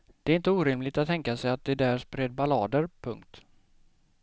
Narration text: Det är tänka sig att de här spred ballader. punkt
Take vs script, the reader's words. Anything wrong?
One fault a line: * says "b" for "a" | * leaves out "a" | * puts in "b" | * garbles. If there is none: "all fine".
* puts in "inte orimligt att"
* says "där" for "här"